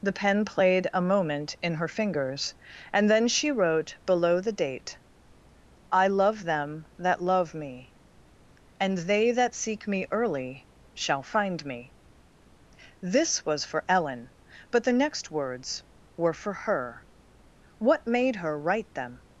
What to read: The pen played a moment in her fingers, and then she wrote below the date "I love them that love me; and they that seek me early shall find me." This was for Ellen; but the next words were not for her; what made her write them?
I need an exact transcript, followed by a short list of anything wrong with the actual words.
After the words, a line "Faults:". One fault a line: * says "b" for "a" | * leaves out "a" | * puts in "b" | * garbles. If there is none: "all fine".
The pen played a moment in her fingers, and then she wrote below the date "I love them that love me; and they that seek me early shall find me." This was for Ellen; but the next words were for her; what made her write them?
Faults:
* leaves out "not"